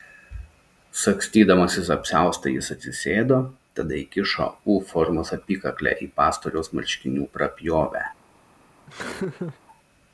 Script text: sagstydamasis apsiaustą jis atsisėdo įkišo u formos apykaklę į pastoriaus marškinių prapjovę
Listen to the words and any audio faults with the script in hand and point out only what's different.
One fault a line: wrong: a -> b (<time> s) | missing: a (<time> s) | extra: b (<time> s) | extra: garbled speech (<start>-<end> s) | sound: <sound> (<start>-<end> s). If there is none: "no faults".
extra: tada (3.8 s)
sound: laugh (8.9-9.6 s)